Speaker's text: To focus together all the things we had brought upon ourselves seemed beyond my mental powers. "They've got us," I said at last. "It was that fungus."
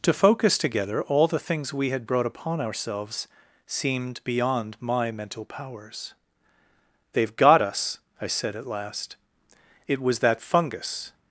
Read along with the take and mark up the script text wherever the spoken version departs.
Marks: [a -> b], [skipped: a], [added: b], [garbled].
To focus together all the things we had brought upon ourselves seemed beyond my mental powers. "They've got us," I said at last. "It was that fungus."